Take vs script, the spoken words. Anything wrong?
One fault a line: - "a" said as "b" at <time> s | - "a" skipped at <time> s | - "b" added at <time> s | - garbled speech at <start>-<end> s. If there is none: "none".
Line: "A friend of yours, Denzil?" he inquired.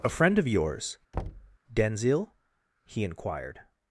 none